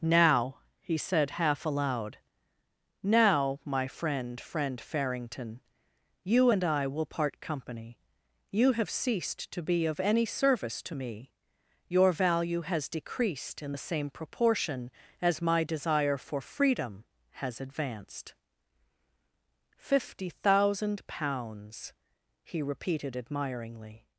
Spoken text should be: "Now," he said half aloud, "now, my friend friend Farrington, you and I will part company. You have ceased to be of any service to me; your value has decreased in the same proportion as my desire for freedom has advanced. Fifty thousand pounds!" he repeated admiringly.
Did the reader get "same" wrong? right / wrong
right